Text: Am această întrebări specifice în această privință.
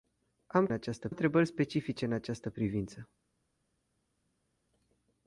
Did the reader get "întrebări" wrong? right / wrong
right